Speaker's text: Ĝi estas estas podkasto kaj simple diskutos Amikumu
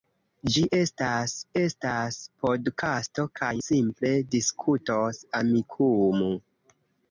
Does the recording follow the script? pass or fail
pass